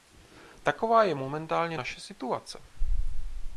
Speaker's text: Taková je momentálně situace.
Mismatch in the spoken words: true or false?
true